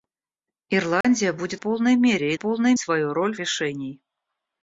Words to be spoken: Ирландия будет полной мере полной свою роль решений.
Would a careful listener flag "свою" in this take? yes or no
no